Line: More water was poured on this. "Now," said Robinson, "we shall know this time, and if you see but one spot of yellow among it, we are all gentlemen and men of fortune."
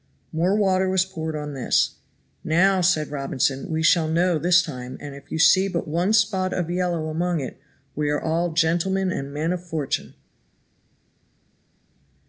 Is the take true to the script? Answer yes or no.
yes